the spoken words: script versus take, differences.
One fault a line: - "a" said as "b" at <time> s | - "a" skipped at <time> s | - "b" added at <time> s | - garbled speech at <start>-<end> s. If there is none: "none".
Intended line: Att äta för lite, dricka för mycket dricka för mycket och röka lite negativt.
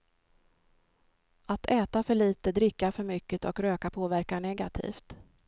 - "dricka för mycket" skipped at 3.5 s
- "lite" said as "påverkar" at 3.9 s